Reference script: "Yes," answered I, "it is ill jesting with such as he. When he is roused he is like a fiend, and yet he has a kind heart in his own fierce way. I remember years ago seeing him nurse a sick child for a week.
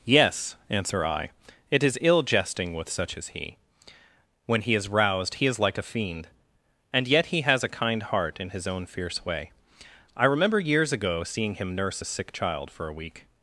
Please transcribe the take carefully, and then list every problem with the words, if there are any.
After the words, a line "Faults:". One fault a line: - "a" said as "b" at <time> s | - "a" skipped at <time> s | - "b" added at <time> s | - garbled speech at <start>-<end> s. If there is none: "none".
"Yes," answer I, "it is ill jesting with such as he. When he is roused he is like a fiend, and yet he has a kind heart in his own fierce way. I remember years ago seeing him nurse a sick child for a week.
Faults:
- "answered" said as "answer" at 0.7 s